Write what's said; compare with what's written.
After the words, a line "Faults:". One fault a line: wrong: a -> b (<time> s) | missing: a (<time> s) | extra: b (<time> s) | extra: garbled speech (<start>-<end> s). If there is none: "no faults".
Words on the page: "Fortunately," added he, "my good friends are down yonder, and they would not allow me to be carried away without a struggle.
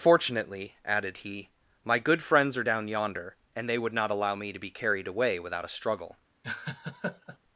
"Fortunately," added he, "my good friends are down yonder, and they would not allow me to be carried away without a struggle.
Faults:
no faults